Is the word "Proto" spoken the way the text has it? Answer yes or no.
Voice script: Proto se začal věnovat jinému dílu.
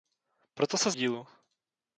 yes